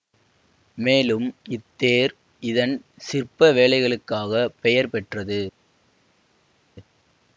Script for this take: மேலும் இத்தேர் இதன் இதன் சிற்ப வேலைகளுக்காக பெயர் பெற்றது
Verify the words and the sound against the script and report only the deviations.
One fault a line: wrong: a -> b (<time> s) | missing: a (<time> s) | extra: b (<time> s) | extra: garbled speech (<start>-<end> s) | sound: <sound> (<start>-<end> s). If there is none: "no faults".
missing: இதன் (2.7 s)